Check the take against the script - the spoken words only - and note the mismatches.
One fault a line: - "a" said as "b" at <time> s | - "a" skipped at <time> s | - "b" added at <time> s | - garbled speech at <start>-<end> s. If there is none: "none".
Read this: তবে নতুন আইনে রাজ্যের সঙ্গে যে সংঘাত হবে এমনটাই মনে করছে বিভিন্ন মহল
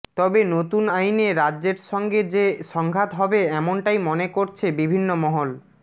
none